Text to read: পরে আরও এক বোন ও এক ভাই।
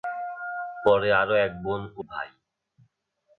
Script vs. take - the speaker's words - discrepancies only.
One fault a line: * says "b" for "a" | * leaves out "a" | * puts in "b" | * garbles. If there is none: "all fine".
* leaves out "এক"